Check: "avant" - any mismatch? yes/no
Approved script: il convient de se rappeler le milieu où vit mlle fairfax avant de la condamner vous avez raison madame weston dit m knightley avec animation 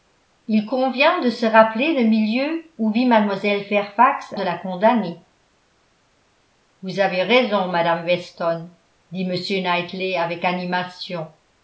yes